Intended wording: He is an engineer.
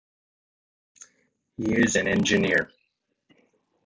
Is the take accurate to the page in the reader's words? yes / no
yes